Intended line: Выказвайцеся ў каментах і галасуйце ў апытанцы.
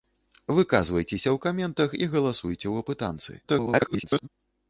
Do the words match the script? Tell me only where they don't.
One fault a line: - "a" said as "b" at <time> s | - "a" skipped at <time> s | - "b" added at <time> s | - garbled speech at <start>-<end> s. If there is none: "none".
- garbled speech at 3.4-4.3 s